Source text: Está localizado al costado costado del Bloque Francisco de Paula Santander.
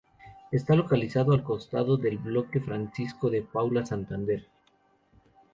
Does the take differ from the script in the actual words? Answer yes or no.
yes